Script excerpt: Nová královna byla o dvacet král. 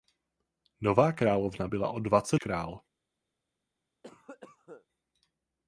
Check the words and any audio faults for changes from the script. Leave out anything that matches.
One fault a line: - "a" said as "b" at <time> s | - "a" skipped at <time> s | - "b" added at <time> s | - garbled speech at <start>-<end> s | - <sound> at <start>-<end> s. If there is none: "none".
- cough at 4.0-4.9 s